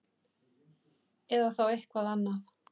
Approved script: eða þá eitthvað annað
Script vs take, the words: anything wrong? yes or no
no